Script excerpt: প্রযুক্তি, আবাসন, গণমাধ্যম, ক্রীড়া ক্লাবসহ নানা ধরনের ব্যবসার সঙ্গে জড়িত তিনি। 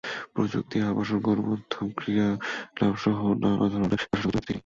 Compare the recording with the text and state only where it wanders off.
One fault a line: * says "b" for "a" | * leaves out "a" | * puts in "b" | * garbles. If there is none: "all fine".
all fine